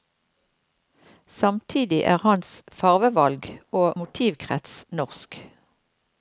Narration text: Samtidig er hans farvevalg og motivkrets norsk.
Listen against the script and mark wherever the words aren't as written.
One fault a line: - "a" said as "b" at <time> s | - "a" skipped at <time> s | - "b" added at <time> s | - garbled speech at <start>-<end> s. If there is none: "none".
none